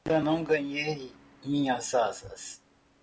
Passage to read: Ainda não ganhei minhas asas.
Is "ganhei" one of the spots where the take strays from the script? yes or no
no